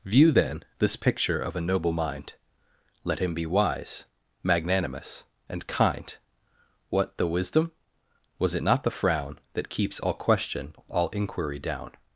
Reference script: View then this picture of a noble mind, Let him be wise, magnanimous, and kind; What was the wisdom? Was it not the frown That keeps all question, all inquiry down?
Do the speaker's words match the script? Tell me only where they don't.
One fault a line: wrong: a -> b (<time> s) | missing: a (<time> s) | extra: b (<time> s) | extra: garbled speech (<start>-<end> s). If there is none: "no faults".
missing: was (7.2 s)